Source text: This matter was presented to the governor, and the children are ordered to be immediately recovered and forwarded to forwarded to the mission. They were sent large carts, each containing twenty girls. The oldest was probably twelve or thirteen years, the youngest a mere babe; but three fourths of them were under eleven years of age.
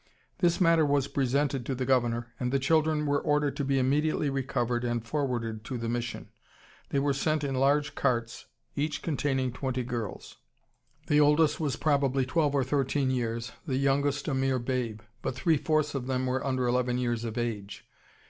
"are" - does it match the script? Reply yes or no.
no